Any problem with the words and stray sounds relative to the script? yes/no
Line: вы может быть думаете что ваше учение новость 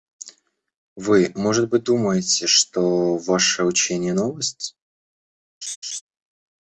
yes